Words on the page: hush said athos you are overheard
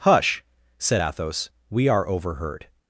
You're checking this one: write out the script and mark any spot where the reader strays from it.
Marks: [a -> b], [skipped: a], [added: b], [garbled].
hush said athos [you -> we] are overheard